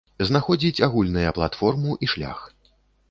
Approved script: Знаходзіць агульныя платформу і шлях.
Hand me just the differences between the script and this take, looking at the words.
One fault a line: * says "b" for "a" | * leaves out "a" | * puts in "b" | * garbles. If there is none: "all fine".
all fine